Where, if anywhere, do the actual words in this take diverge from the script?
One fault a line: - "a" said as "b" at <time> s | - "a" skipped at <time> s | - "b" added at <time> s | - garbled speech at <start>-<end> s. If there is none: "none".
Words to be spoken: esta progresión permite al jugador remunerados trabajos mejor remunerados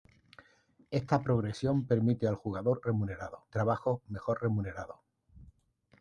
none